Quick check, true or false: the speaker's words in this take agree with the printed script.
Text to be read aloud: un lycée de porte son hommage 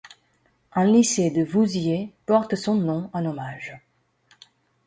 false